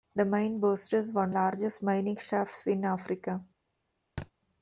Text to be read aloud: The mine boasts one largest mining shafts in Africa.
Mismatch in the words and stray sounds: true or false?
true